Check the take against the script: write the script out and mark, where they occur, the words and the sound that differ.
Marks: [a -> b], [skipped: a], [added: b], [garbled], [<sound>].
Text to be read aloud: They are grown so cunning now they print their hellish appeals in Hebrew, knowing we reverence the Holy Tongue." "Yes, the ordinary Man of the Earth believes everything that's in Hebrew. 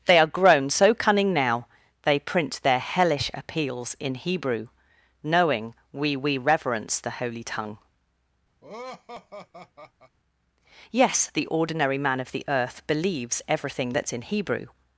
They are grown so cunning now they print their hellish appeals in Hebrew, knowing we [added: we] reverence the Holy Tongue." [laugh] "Yes, the ordinary Man of the Earth believes everything that's in Hebrew.